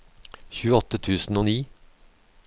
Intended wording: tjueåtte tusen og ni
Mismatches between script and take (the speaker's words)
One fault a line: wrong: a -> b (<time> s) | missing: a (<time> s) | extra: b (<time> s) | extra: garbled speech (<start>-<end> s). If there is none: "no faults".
no faults